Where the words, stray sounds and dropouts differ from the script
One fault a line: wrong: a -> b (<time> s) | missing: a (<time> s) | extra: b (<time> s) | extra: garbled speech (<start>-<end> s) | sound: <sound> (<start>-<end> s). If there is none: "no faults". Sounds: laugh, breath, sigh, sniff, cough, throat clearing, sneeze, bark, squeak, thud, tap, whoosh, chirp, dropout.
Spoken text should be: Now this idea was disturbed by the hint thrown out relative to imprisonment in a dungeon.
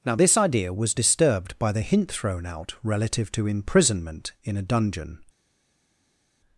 no faults